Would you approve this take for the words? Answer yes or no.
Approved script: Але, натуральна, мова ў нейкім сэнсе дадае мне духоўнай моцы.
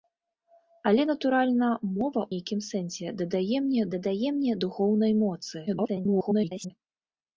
no